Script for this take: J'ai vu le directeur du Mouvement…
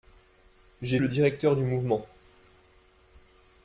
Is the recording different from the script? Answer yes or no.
yes